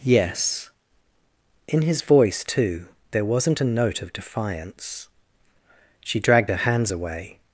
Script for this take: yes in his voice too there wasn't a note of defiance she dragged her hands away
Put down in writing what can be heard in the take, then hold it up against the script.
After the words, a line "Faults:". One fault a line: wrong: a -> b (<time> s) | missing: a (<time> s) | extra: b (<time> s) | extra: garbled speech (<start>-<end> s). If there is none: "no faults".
yes in his voice too there wasn't a note of defiance she dragged her hands away
Faults:
no faults